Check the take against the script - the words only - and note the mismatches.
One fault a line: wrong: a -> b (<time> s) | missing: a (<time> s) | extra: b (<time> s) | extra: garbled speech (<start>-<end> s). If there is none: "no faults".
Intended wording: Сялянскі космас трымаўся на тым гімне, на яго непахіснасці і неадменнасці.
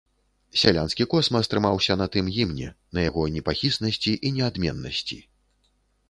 no faults